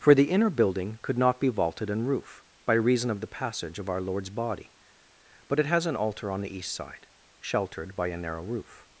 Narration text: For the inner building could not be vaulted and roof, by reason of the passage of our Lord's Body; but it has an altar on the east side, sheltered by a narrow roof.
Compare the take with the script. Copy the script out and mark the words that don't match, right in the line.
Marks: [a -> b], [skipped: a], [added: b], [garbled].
For the inner building could not be vaulted and roof, by reason of the passage of our Lord's Body; but it has an altar on the east side, sheltered by a narrow roof.